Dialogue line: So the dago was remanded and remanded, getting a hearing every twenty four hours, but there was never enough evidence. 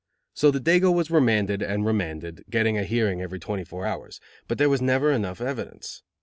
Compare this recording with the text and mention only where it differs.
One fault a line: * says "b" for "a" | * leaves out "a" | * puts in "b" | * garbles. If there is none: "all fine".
all fine